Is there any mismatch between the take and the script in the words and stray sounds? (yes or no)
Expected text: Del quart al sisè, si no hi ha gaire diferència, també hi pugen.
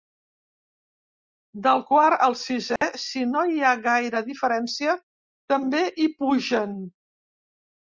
yes